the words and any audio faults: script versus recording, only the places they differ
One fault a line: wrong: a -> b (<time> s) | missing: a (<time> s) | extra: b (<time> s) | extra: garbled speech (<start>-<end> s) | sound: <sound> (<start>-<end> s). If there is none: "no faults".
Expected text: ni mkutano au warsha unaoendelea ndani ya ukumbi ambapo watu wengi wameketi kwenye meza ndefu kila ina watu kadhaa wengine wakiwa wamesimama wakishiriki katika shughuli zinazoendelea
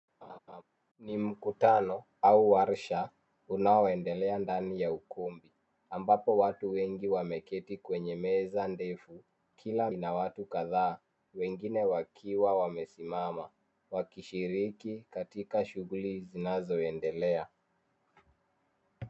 sound: laugh (0.2-0.6 s)